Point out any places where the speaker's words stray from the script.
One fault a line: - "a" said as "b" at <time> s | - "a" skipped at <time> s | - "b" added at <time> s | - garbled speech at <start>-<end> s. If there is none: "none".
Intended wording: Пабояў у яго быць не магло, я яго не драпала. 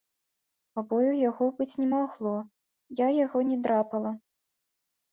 none